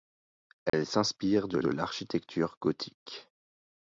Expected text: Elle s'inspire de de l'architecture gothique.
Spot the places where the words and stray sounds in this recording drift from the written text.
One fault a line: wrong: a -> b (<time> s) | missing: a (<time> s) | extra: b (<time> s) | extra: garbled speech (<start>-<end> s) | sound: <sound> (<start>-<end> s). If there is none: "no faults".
sound: dropout (0.7-0.7 s)